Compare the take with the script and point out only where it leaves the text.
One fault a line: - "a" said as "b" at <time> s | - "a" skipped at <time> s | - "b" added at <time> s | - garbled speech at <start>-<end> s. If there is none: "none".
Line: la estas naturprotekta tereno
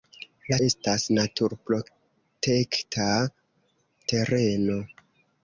none